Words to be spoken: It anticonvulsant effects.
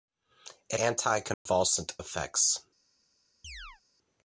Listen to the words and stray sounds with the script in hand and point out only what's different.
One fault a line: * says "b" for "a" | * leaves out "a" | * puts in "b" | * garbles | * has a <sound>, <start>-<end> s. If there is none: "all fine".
* has a dropout, 1.3-1.5 s
* has a chirp, 3.4-3.8 s